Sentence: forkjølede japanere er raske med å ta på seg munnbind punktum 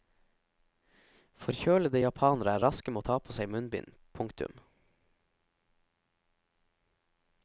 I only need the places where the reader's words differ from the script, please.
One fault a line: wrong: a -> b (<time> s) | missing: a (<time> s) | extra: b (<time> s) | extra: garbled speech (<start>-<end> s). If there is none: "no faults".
no faults